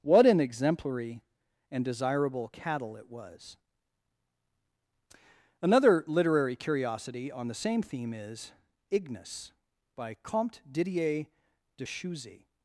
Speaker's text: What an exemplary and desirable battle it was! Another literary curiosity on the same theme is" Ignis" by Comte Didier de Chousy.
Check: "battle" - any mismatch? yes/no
yes